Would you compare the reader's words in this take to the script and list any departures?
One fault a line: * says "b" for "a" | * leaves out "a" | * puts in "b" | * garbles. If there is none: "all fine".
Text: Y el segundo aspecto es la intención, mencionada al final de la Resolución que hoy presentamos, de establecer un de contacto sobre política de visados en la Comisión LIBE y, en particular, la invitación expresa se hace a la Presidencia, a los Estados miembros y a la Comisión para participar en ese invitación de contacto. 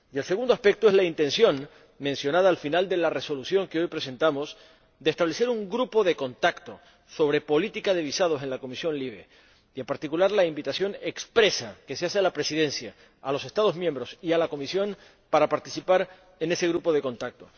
* puts in "grupo"
* puts in "que"
* says "grupo" for "invitación"